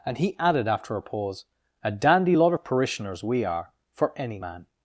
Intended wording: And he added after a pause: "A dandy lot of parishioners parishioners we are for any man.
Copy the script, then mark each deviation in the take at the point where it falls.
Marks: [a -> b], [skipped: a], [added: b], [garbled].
And he added after a pause: "A dandy lot of parishioners [skipped: parishioners] we are for any man.